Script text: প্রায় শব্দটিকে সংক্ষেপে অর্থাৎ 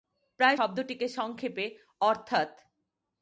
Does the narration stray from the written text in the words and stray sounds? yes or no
no